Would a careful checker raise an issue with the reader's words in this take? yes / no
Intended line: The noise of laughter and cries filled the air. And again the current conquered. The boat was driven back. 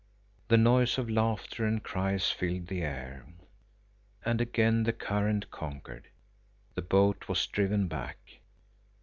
no